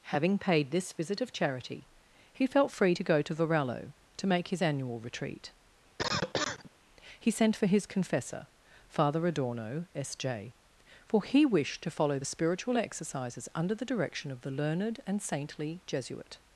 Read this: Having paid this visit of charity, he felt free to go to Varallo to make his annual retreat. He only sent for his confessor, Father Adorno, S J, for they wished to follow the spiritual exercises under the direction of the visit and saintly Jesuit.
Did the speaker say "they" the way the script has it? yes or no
no